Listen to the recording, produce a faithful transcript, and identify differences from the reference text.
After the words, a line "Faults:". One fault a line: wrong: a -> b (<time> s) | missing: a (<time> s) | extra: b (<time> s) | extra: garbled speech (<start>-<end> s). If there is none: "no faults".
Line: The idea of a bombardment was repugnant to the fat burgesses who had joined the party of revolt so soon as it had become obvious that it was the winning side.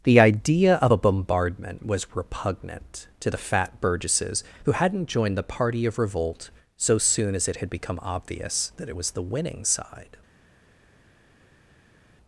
The idea of a bombardment was repugnant to the fat burgesses who hadn't joined the party of revolt so soon as it had become obvious that it was the winning side.
Faults:
wrong: had -> hadn't (4.7 s)